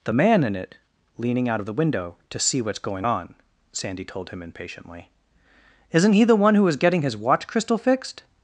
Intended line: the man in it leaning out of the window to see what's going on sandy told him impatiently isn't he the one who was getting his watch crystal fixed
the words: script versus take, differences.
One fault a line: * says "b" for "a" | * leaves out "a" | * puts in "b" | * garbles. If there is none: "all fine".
all fine